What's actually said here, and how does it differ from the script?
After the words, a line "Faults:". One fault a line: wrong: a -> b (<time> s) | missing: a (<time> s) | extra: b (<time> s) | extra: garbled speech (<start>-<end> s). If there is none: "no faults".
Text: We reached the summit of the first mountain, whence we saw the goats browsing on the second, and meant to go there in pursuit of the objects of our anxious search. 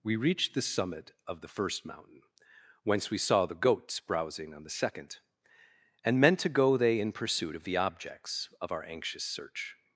We reached the summit of the first mountain, whence we saw the goats browsing on the second, and meant to go they in pursuit of the objects of our anxious search.
Faults:
wrong: there -> they (6.8 s)